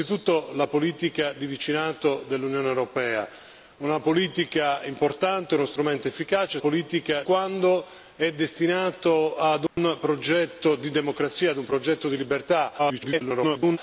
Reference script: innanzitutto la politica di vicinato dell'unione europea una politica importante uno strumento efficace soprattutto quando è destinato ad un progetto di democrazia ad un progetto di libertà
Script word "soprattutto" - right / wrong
wrong